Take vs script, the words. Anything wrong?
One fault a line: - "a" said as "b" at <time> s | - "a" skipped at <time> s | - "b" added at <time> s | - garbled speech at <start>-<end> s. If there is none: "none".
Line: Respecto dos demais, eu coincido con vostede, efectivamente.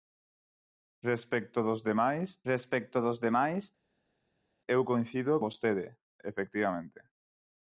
- "respecto dos demais" added at 2.5 s
- "con" skipped at 5.3 s